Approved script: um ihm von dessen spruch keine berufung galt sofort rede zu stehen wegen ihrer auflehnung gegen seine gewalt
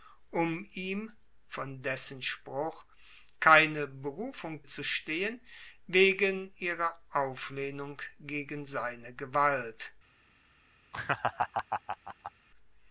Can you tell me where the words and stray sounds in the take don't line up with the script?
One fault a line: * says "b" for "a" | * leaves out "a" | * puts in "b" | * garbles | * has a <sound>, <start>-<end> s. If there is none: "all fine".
* leaves out "galt sofort rede"
* has a laugh, 10.9-12.3 s